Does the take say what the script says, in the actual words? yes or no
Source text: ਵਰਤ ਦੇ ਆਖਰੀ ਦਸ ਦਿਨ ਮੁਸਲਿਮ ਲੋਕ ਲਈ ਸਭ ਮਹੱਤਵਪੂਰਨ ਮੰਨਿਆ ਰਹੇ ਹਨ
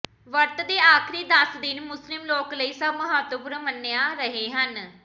yes